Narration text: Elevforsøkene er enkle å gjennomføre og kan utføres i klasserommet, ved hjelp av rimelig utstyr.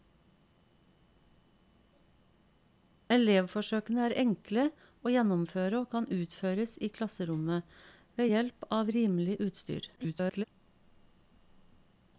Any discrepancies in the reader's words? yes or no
yes